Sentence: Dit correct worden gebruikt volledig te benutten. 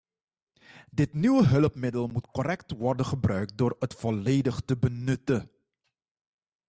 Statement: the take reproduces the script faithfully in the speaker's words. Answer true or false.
false